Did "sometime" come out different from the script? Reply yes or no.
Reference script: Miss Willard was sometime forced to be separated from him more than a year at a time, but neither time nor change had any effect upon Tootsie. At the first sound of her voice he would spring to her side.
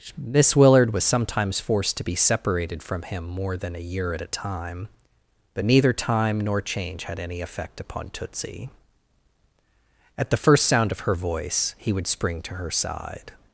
yes